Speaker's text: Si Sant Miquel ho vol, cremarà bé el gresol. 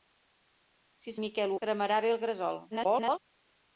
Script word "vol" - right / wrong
wrong